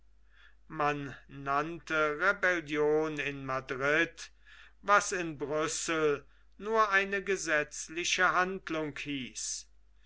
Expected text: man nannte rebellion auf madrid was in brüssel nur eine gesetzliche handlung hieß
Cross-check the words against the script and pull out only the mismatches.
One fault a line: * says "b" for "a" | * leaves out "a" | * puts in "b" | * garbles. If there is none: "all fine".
* says "in" for "auf"